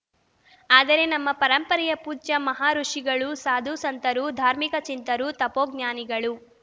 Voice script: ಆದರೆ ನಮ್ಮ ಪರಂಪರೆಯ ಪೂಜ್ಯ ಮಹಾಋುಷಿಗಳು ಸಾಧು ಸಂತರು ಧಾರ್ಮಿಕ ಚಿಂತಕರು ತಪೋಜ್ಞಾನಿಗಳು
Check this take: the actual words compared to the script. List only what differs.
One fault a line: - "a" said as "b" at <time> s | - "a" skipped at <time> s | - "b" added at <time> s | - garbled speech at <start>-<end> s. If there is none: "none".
none